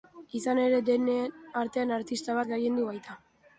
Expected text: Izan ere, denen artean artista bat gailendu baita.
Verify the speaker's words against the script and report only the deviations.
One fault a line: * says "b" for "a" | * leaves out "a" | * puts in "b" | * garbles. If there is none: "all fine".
all fine